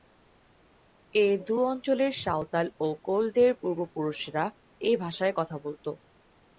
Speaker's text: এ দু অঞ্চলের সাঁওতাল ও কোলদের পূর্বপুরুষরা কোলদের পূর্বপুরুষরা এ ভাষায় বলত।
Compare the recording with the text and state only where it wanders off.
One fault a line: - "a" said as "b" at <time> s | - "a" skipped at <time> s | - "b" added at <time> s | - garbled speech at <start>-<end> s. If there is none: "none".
- "কোলদের পূর্বপুরুষরা" skipped at 4.4 s
- "কথা" added at 5.3 s